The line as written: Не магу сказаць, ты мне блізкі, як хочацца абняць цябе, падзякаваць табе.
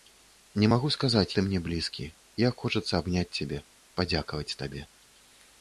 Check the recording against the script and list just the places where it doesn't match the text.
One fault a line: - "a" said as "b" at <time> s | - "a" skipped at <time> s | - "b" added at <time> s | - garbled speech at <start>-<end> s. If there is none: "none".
none